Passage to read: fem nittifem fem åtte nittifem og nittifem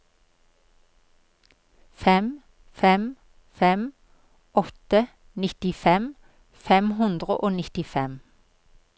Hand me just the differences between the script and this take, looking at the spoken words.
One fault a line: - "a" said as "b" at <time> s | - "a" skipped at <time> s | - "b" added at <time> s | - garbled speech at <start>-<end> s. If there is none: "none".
- "nittifem" said as "fem" at 2.8 s
- "fem hundre" added at 6.7 s